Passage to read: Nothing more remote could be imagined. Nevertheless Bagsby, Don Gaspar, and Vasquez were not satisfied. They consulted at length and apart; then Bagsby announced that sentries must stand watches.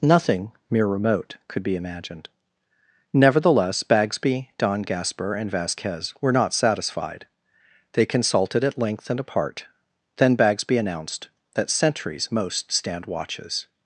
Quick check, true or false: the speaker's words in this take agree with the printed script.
false